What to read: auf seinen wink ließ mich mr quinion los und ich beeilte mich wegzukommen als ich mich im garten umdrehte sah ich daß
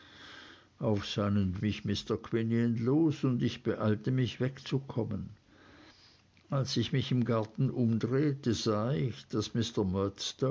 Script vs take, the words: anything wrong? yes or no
yes